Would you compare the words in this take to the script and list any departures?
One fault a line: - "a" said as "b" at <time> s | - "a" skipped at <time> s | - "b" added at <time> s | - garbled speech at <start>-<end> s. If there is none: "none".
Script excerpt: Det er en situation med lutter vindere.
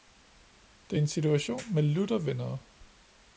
none